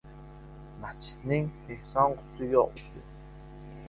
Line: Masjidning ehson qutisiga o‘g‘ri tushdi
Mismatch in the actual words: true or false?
true